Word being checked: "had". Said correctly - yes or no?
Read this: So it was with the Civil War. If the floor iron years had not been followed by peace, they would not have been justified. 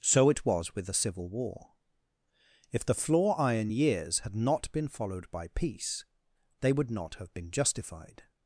yes